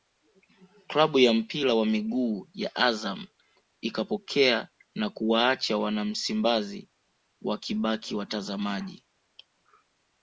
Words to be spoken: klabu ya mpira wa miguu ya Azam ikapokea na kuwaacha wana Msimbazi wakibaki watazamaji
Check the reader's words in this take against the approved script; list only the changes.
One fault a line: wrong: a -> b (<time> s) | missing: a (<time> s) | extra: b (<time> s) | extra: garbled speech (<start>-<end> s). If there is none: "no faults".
no faults